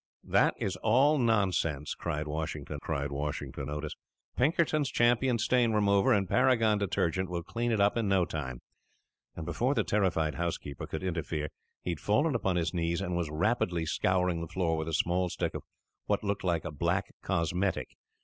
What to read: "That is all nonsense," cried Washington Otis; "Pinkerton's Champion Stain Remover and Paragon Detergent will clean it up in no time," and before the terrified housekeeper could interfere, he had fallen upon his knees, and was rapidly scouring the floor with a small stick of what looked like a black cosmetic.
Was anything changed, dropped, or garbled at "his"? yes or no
no